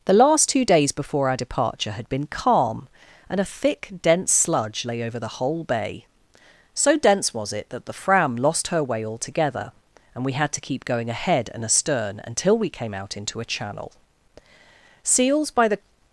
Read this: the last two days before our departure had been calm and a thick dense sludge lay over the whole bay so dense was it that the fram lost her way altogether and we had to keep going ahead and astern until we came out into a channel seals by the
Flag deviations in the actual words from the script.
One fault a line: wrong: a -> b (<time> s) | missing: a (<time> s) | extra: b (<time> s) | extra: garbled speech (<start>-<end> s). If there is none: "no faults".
no faults